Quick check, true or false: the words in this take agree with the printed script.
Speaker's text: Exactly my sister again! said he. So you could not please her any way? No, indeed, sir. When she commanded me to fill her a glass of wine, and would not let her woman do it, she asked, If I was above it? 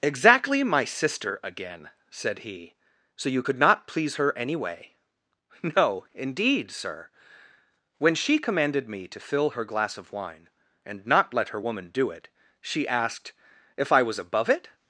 false